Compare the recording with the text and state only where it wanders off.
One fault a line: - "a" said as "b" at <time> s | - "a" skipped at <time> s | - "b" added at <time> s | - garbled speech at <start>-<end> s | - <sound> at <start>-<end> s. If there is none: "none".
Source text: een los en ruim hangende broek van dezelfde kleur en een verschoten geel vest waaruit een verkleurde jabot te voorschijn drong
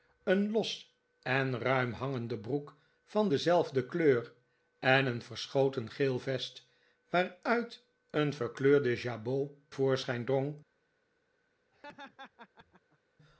- "te" skipped at 9.5 s
- laugh at 11.7-13.0 s